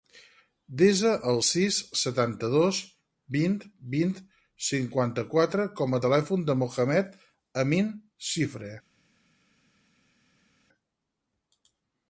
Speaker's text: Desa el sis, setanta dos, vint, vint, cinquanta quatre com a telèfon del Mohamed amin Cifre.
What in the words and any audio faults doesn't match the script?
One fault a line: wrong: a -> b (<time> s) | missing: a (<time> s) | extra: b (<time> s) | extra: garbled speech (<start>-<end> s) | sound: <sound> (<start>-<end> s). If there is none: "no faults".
no faults